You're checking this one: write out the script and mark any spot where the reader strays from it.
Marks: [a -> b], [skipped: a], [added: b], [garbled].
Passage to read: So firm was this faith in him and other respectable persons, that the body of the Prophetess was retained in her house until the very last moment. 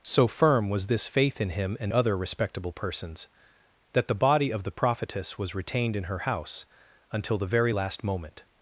So firm was this faith in him and other respectable persons, that the body of the Prophetess was retained in her house until the very last moment.